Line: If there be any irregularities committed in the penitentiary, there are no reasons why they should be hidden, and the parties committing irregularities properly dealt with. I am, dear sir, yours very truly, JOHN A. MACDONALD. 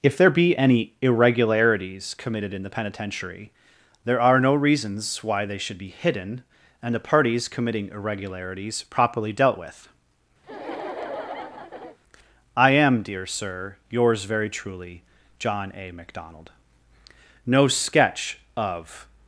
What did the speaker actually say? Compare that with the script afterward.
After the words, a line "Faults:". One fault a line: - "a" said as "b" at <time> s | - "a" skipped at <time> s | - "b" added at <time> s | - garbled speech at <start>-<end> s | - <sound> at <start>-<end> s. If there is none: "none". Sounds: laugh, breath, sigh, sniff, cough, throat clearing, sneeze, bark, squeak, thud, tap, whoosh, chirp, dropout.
If there be any irregularities committed in the penitentiary, there are no reasons why they should be hidden, and the parties committing irregularities properly dealt with. I am, dear sir, yours very truly, JOHN A. MACDONALD. No sketch of
Faults:
- laugh at 10.4-12.0 s
- "No sketch of" added at 17.5 s